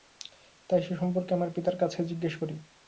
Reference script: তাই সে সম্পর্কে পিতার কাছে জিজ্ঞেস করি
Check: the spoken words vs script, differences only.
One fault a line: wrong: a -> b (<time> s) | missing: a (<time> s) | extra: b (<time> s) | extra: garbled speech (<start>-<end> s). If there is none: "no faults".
extra: আমার (1.3 s)